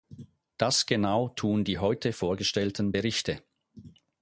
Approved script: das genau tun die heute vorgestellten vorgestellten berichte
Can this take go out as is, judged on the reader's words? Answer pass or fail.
fail